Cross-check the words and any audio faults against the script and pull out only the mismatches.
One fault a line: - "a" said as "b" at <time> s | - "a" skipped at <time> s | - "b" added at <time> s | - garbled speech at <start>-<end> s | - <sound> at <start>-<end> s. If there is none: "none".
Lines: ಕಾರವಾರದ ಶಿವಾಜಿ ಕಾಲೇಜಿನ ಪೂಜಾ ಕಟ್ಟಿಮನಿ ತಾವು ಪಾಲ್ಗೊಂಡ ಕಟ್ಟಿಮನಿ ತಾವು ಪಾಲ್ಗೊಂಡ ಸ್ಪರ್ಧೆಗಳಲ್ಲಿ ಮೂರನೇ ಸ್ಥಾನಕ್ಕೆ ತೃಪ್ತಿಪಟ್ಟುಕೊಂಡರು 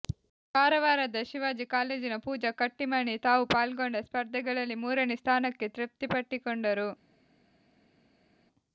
- "ಕಟ್ಟಿಮನಿ ತಾವು ಪಾಲ್ಗೊಂಡ" skipped at 4.0 s